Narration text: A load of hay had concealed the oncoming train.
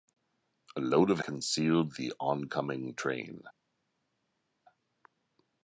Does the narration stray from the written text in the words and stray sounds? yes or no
yes